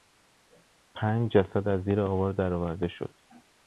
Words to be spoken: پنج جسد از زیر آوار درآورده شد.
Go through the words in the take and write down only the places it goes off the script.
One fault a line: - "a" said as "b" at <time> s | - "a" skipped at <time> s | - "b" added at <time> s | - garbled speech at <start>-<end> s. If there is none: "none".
none